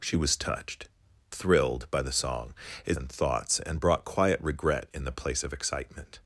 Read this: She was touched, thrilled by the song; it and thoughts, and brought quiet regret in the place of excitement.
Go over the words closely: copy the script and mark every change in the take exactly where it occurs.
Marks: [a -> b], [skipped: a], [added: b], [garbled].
She was touched, thrilled by the song; it and thoughts, and brought quiet regret in the place of excitement.